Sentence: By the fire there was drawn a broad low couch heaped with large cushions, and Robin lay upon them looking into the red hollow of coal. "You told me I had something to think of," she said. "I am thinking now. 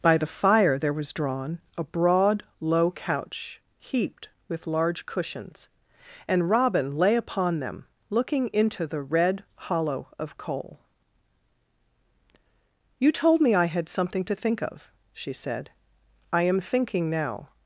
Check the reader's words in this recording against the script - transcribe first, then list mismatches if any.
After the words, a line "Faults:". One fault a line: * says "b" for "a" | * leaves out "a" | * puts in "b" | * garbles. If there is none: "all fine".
By the fire there was drawn a broad low couch heaped with large cushions, and Robin lay upon them looking into the red hollow of coal. "You told me I had something to think of," she said. "I am thinking now.
Faults:
all fine